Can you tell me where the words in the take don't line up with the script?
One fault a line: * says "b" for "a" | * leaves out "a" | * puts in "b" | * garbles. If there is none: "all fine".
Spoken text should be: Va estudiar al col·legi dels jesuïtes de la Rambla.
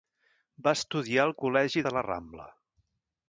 * leaves out "dels jesuïtes"